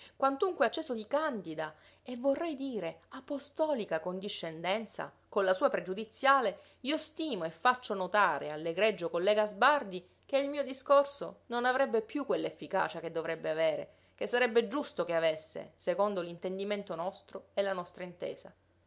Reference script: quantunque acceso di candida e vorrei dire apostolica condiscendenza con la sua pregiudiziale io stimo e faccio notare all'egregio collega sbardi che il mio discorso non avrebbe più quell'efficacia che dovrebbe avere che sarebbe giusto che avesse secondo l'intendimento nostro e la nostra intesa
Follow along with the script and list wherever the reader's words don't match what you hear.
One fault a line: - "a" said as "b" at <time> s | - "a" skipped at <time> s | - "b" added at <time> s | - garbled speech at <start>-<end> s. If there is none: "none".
none